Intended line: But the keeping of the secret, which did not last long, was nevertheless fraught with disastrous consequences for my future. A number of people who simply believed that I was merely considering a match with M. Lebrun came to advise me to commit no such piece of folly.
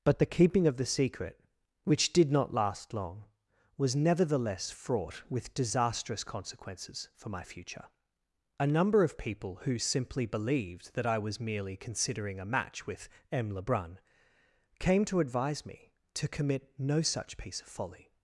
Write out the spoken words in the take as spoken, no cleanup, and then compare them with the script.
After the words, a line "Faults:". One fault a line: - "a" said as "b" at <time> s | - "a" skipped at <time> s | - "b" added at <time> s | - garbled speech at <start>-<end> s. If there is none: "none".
But the keeping of the secret, which did not last long, was nevertheless fraught with disastrous consequences for my future. A number of people who simply believed that I was merely considering a match with M. Lebrun came to advise me to commit no such piece of folly.
Faults:
none